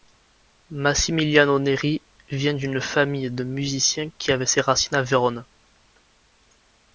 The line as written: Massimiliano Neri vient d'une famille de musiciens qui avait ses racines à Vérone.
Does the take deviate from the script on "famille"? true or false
false